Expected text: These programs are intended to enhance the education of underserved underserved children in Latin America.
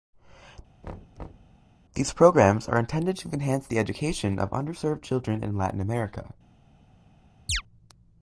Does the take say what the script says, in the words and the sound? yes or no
no